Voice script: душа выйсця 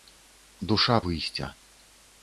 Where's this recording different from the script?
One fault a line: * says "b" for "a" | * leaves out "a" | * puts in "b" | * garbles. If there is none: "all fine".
all fine